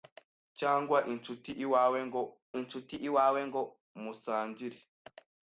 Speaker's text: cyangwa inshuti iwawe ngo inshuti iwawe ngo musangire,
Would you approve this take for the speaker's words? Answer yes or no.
yes